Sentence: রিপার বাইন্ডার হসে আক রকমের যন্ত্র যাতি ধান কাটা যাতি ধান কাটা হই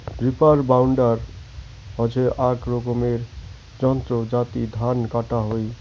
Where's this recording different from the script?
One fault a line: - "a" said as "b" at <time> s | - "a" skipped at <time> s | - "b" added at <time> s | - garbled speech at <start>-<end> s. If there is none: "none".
- "যাতি ধান কাটা" skipped at 5.4 s